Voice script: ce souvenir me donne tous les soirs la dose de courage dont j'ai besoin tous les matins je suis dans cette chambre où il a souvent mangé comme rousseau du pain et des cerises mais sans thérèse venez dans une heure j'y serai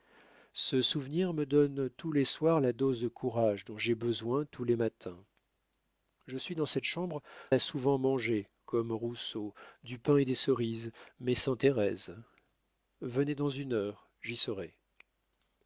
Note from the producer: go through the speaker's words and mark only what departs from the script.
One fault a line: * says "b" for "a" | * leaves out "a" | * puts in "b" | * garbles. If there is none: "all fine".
* leaves out "où il"